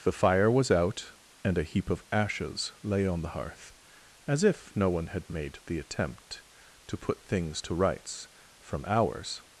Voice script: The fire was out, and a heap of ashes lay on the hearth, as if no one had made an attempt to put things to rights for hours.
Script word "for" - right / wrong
wrong